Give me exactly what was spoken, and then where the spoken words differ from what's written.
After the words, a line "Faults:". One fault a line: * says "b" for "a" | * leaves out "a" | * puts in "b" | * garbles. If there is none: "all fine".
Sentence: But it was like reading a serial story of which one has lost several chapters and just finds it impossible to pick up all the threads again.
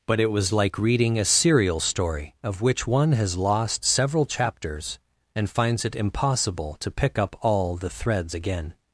But it was like reading a serial story of which one has lost several chapters and finds it impossible to pick up all the threads again.
Faults:
* leaves out "just"